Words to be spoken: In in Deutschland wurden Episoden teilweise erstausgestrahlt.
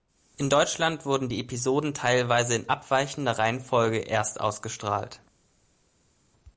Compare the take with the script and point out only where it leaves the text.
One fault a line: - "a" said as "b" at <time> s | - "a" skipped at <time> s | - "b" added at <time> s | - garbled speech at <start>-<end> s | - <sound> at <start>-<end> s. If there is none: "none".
- "in" skipped at 0.5 s
- "die" added at 1.3 s
- "in abweichender Reihenfolge" added at 2.5 s